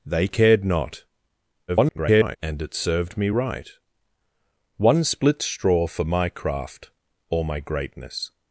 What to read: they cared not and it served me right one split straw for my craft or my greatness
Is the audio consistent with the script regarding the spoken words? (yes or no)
no